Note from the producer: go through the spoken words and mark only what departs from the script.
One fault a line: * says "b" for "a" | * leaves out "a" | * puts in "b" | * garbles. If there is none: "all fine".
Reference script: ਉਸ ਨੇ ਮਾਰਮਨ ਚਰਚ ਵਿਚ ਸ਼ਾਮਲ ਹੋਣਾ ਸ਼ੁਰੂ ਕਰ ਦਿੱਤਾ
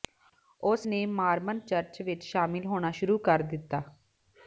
all fine